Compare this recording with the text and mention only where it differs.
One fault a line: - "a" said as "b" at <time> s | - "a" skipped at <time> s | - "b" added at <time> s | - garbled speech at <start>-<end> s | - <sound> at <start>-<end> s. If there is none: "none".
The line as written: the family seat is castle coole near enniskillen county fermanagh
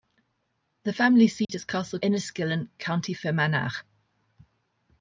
- dropout at 1.4-1.5 s
- "coole near" skipped at 2.0 s